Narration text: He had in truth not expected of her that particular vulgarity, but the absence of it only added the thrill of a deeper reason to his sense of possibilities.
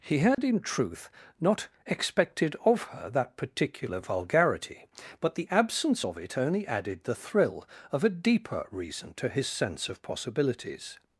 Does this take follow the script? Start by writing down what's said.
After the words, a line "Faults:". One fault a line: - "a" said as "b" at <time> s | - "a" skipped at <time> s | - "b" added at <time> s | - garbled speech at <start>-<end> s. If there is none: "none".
He had in truth not expected of her that particular vulgarity, but the absence of it only added the thrill of a deeper reason to his sense of possibilities.
Faults:
none